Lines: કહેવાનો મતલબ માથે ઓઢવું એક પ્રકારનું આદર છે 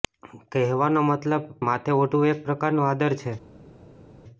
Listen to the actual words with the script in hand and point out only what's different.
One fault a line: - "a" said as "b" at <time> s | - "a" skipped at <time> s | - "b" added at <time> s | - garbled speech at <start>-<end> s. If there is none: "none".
none